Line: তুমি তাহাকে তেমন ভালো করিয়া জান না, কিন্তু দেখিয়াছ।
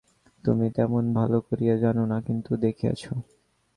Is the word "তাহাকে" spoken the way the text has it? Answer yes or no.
no